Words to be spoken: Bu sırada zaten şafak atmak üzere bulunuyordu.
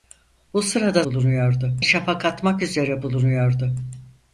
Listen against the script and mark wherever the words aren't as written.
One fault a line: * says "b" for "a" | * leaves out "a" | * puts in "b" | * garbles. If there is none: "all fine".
* says "bulunuyordu" for "zaten"